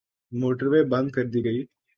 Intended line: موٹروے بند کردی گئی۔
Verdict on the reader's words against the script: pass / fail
pass